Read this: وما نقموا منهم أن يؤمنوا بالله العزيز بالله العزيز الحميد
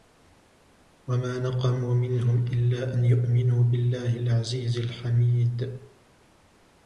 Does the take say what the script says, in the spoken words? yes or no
no